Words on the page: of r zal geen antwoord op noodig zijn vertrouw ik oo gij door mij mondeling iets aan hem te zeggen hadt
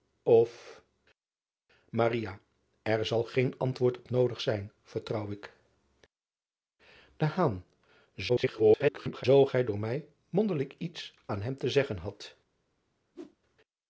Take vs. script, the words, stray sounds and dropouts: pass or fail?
fail